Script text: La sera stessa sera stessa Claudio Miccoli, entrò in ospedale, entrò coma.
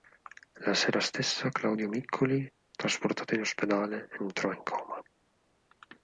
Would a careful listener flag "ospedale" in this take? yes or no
no